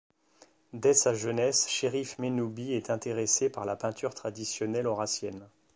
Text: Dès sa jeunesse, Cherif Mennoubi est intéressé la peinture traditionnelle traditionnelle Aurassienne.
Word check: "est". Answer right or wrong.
right